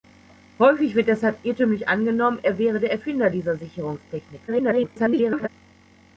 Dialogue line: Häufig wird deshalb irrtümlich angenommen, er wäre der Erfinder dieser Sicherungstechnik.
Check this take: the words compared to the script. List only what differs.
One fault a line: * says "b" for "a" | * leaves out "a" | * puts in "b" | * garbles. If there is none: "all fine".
* garbles